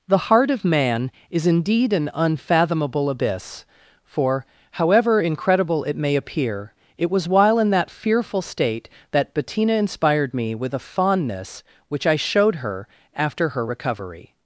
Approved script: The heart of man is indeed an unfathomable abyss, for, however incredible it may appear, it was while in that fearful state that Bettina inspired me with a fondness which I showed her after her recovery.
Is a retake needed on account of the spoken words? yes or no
no